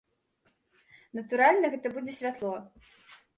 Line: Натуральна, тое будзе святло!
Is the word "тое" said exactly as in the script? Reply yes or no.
no